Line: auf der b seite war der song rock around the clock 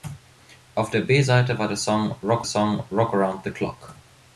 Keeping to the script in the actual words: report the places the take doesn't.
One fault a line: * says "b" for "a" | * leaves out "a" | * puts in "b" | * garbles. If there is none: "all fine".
* puts in "song rock"